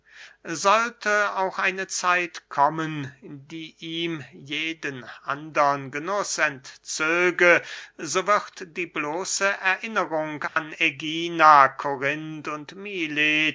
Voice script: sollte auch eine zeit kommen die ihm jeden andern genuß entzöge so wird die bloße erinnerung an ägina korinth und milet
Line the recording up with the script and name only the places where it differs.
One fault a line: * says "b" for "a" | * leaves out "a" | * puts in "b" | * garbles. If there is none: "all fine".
all fine